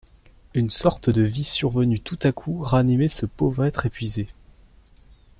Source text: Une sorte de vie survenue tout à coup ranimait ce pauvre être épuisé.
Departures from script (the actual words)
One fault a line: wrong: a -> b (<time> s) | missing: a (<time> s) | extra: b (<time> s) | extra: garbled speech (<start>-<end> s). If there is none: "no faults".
no faults